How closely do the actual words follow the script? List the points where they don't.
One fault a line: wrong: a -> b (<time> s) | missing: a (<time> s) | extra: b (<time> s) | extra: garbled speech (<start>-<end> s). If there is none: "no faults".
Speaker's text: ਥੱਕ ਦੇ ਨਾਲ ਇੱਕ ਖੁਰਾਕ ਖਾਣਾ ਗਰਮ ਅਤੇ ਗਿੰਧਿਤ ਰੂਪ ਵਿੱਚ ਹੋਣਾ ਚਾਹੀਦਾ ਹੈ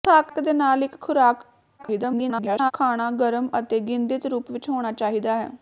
extra: garbled speech (1.8-2.7 s)